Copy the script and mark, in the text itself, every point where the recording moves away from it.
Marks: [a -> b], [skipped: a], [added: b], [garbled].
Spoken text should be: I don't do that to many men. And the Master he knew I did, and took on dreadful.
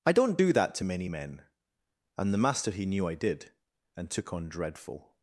I don't do that to many men. And the Master he knew I did, and took on dreadful.